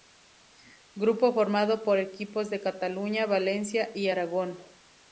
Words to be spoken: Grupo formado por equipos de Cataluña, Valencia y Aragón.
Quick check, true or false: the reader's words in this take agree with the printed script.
true